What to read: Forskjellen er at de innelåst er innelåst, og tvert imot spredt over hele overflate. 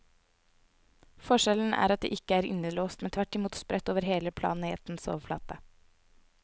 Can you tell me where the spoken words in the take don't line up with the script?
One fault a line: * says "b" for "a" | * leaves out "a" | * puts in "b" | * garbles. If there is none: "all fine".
* says "ikke" for "innelåst"
* says "men" for "og"
* puts in "planetens"